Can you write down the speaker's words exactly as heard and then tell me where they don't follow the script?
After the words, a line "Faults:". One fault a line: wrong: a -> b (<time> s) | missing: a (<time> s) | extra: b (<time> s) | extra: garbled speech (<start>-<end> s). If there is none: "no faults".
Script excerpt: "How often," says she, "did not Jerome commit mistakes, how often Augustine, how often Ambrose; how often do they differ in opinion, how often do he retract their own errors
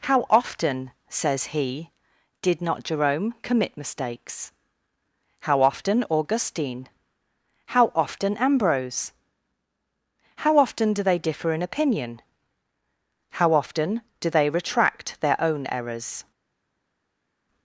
"How often," says he, "did not Jerome commit mistakes, how often Augustine, how often Ambrose; how often do they differ in opinion, how often do they retract their own errors
Faults:
wrong: she -> he (1.5 s)
wrong: he -> they (14.3 s)